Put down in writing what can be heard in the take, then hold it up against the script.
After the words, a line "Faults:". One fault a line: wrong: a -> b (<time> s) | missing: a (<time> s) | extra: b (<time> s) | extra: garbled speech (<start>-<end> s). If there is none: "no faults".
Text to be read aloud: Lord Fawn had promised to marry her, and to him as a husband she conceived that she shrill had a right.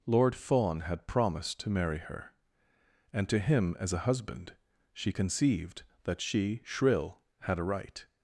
Lord Fawn had promised to marry her, and to him as a husband she conceived that she shrill had a right.
Faults:
no faults